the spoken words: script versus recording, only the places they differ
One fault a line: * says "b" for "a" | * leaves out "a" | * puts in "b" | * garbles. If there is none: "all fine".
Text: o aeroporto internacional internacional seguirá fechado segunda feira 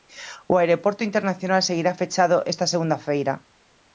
* leaves out "internacional"
* puts in "esta"